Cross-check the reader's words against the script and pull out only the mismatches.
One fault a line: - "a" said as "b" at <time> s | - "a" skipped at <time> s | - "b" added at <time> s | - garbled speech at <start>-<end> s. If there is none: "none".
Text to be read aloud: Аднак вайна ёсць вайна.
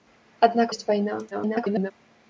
- "вайна" skipped at 0.7 s
- garbled speech at 1.3-1.9 s